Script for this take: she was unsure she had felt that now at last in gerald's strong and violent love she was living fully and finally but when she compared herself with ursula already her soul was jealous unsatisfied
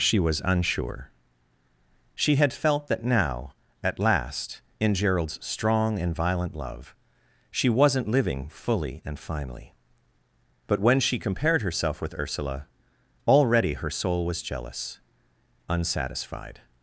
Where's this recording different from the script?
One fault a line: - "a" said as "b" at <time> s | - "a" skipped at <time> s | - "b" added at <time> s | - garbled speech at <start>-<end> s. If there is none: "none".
- "was" said as "wasn't" at 7.7 s